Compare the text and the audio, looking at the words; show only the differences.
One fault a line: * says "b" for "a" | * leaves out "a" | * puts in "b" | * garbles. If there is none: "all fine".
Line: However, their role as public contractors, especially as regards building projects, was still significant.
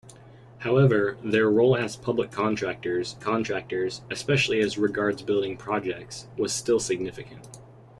* puts in "contractors"